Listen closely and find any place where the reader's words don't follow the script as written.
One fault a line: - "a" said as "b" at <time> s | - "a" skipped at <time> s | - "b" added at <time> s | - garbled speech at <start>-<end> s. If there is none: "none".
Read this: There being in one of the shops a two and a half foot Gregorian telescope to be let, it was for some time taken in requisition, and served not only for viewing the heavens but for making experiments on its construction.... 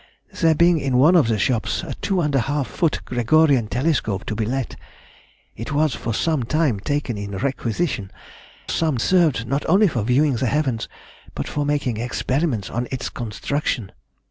- "and" said as "some" at 8.7 s